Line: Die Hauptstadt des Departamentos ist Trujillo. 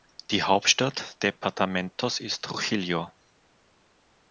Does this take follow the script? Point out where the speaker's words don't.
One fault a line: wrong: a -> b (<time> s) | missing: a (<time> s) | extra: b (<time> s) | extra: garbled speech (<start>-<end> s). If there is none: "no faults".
missing: des (1.2 s)